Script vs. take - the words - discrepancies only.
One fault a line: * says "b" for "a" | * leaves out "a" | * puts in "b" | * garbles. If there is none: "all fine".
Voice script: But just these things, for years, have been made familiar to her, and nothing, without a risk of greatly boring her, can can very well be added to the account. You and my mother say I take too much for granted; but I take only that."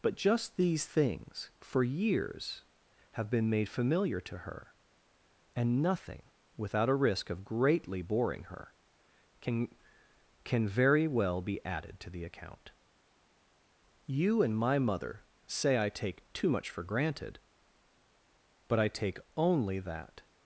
all fine